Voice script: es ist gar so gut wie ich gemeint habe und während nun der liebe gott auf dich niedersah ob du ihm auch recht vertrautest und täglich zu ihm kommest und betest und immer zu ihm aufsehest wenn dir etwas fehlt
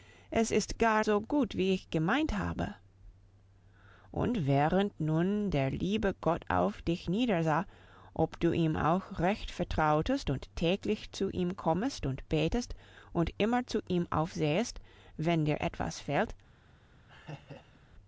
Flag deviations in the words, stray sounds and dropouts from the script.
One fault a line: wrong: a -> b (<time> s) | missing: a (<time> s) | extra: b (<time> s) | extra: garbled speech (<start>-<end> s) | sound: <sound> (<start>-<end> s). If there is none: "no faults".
sound: laugh (17.1-17.9 s)